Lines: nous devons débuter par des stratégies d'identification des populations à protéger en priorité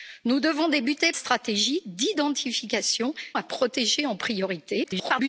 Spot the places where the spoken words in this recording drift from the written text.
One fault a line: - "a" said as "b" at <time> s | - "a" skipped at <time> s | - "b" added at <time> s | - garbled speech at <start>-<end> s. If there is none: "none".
- "par des" skipped at 1.1 s
- "des populations" skipped at 3.1 s
- garbled speech at 4.8-5.3 s